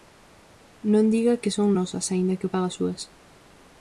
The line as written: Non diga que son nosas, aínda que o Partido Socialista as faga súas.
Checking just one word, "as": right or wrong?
wrong